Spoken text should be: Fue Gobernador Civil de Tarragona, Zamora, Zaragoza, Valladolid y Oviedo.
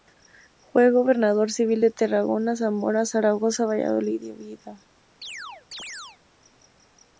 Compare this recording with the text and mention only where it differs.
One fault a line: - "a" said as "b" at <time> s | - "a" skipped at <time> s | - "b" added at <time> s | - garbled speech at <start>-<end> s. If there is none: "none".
none